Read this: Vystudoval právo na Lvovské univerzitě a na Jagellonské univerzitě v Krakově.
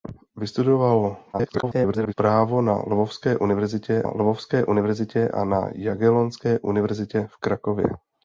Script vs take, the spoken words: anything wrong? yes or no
yes